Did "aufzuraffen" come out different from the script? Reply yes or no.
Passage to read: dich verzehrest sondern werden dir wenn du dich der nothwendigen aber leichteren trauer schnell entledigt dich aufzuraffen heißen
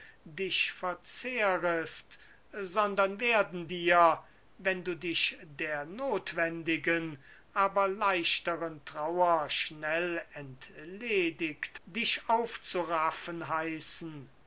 no